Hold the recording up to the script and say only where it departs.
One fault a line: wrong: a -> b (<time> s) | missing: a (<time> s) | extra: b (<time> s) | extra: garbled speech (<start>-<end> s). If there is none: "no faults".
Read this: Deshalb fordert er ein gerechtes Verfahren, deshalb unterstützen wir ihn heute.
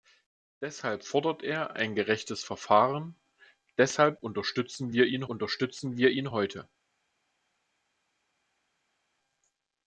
extra: unterstützen wir ihn (5.3 s)